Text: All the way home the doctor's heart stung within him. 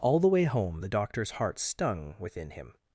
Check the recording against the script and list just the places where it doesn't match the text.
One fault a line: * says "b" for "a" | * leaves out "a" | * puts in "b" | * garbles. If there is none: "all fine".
all fine